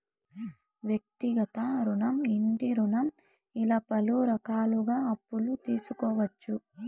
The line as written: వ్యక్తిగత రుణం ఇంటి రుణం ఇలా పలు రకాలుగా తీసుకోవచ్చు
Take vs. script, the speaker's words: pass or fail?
fail